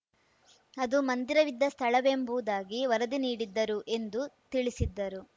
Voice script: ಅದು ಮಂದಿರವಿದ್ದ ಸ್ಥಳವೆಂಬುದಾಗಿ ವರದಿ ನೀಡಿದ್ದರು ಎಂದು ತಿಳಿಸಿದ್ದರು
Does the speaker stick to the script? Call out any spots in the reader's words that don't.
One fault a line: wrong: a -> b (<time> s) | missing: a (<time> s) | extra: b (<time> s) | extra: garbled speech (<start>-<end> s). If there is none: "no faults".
no faults